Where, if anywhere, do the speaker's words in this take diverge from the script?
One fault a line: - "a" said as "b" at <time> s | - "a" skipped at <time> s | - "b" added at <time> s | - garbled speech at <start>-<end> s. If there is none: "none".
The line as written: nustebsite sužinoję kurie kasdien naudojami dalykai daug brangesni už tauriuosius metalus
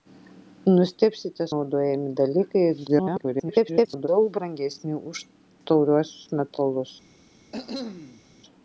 - "sužinoję kurie kasdien" skipped at 1.4 s
- garbled speech at 2.9-4.1 s